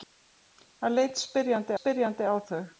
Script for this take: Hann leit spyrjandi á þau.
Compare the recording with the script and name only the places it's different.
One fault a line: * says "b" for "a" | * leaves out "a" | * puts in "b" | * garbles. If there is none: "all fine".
* puts in "spyrjandi"